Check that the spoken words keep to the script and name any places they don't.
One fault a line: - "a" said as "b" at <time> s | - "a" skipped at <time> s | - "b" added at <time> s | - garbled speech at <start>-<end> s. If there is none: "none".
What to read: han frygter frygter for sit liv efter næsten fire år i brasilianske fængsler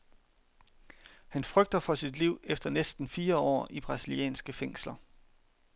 - "frygter" skipped at 1.8 s